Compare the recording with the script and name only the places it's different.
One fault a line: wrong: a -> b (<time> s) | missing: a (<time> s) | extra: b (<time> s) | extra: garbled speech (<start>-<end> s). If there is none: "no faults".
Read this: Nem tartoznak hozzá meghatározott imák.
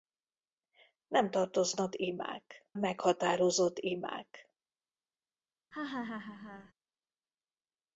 wrong: hozzá -> imák (1.9 s)